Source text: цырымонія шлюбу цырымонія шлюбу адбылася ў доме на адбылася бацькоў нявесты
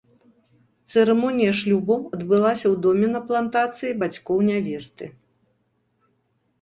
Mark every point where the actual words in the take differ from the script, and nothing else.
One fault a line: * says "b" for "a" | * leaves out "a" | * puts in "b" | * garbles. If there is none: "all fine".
* leaves out "цырымонія шлюбу"
* says "плантацыі" for "адбылася"